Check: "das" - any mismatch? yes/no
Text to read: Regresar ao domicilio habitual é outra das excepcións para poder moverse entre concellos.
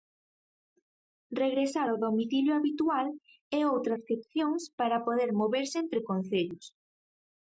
yes